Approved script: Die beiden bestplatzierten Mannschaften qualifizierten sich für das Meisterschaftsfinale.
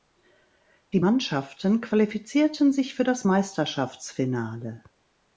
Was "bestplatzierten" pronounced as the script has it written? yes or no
no